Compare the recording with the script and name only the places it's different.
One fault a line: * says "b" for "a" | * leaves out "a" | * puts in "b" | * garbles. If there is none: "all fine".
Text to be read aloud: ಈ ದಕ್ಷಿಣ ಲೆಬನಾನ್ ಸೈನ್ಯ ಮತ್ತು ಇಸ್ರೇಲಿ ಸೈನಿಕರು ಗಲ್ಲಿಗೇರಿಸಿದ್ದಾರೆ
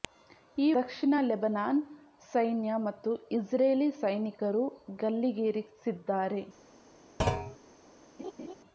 all fine